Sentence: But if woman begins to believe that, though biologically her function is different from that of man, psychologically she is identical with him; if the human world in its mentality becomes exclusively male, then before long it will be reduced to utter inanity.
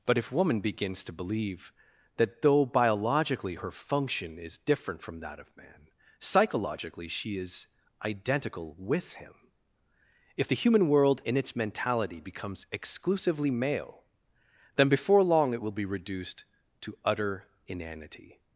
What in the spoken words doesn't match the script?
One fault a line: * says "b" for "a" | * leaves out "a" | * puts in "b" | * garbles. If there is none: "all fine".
all fine